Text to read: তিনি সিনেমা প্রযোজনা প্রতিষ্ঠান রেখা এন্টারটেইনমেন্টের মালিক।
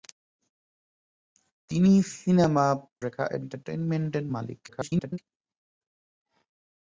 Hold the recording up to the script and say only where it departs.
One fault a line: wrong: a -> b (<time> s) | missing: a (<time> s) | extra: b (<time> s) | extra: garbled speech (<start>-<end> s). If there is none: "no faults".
missing: প্রযোজনা প্রতিষ্ঠান (2.6 s)
extra: garbled speech (4.7-5.2 s)